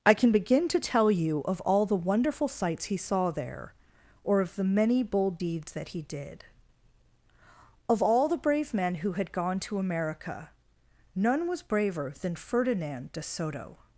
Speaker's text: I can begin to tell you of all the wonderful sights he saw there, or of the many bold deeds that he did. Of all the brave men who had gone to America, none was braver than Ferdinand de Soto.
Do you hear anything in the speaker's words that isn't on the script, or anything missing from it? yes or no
no